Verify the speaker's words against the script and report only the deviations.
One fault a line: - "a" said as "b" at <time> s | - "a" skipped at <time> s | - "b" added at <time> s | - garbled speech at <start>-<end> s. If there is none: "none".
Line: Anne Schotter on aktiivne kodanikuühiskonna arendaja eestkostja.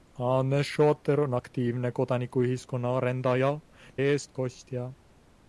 none